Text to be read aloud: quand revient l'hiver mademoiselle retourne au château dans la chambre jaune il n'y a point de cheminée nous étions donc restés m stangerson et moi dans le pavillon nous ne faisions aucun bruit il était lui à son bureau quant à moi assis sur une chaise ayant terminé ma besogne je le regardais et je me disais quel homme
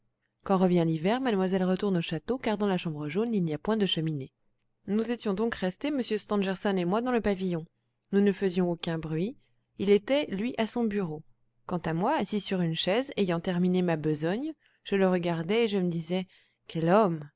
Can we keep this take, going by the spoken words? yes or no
no